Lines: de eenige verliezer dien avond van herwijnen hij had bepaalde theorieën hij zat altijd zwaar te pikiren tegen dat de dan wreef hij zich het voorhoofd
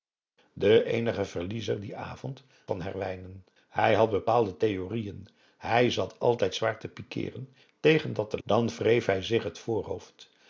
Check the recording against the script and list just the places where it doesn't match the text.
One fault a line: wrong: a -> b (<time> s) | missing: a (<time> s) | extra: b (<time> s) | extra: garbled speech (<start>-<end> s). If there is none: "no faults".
no faults